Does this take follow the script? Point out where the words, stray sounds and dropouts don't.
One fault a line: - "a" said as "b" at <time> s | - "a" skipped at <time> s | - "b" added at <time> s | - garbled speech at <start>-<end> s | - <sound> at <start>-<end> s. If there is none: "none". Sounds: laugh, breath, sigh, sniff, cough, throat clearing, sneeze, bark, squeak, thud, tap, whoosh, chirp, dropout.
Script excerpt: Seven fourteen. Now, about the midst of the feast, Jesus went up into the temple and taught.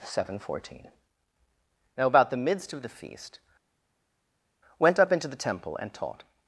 - "Jesus" skipped at 3.4 s